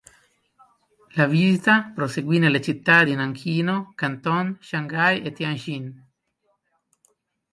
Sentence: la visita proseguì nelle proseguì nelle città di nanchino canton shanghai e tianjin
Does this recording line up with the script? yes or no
no